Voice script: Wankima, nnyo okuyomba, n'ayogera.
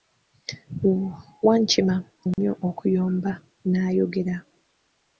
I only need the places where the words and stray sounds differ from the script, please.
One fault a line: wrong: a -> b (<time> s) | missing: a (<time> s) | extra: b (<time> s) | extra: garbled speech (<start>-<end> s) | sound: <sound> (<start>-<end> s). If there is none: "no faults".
sound: dropout (2.3-2.4 s)